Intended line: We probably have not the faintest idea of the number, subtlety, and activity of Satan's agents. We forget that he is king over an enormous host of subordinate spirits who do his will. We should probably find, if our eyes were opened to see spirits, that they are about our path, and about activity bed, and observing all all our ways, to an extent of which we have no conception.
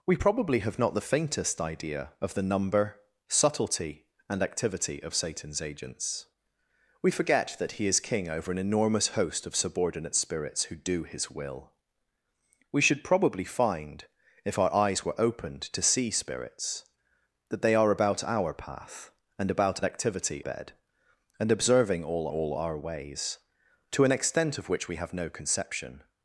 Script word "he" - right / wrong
right